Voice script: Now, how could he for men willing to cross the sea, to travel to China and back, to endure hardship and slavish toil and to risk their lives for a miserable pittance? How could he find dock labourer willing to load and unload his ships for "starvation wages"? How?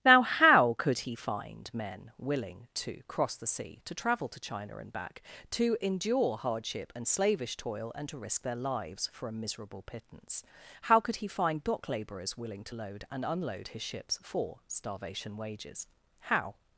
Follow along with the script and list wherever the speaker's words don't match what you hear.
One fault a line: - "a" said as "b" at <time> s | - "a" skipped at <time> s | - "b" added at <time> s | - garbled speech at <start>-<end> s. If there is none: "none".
- "for" said as "find" at 1.1 s
- "labourer" said as "labourers" at 11.9 s